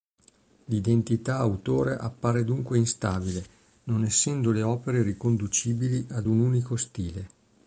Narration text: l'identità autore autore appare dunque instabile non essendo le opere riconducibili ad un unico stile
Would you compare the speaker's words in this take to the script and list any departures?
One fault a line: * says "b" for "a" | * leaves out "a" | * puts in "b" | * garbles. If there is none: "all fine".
* leaves out "autore"